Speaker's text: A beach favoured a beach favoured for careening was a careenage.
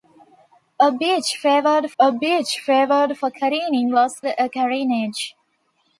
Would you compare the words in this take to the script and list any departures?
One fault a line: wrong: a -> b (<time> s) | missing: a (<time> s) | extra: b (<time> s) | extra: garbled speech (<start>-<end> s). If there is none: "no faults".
no faults